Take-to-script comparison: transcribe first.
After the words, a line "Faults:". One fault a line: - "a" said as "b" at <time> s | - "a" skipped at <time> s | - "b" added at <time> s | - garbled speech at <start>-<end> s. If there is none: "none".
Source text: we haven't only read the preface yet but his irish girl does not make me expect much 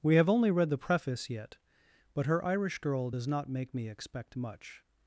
we have only read the preface yet but her irish girl does not make me expect much
Faults:
- "haven't" said as "have" at 0.1 s
- "his" said as "her" at 2.2 s